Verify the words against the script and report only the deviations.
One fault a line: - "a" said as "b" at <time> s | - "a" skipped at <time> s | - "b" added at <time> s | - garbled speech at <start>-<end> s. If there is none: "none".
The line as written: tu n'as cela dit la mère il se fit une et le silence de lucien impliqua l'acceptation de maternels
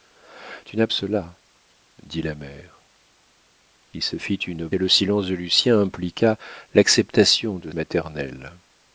none